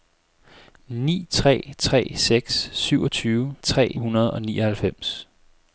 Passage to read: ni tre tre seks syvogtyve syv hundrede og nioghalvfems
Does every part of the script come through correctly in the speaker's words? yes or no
no